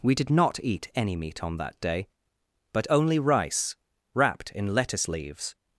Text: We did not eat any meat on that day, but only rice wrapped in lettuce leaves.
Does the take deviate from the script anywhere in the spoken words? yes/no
no